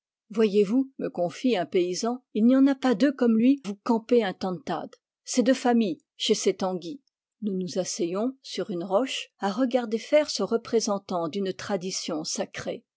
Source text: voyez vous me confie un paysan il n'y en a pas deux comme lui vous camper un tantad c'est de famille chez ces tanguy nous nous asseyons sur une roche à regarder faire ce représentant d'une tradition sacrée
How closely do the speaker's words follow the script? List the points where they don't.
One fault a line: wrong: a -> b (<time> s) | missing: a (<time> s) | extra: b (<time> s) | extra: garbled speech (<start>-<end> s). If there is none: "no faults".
no faults